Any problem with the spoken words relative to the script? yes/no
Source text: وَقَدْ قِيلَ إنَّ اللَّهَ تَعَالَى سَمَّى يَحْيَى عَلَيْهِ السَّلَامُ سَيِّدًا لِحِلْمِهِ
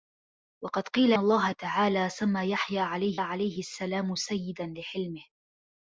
yes